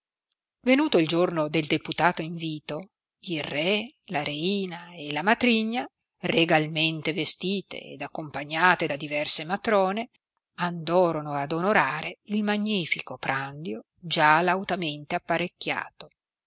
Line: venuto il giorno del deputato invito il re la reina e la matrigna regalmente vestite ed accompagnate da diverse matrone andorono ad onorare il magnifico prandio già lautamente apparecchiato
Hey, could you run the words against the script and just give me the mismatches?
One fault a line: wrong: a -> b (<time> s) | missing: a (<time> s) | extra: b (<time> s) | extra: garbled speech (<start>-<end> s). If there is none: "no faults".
no faults